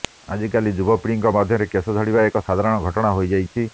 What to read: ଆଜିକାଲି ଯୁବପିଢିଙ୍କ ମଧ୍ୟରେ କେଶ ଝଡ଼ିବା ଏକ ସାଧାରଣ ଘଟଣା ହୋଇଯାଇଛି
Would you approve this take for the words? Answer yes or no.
yes